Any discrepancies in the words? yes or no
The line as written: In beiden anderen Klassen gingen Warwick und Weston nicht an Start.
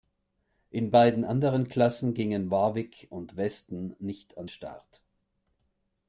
no